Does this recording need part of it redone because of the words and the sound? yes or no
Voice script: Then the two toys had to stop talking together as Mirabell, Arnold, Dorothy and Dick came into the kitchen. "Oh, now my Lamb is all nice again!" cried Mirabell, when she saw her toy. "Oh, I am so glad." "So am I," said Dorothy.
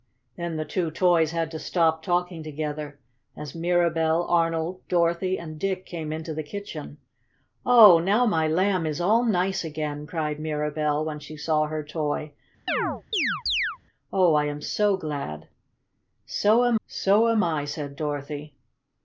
yes